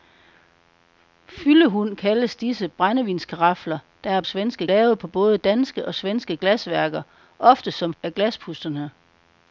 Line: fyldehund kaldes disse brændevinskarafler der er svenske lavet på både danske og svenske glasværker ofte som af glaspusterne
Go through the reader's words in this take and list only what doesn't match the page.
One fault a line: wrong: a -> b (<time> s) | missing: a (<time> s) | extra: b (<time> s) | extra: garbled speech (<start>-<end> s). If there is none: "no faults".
no faults